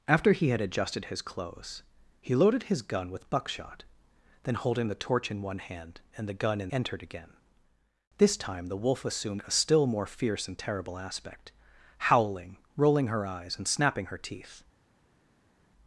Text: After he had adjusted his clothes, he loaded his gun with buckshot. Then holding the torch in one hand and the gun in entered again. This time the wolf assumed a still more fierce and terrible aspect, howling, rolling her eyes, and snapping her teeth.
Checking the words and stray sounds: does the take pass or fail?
pass